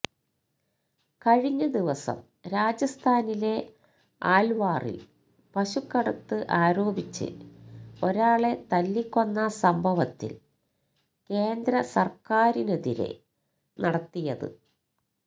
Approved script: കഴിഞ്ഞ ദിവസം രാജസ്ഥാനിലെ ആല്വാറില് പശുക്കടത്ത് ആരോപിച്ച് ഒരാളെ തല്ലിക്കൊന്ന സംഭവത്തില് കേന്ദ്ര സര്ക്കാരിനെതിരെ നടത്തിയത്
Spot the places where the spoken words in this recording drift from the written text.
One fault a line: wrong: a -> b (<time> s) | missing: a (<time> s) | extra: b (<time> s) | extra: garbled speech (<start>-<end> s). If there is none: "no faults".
no faults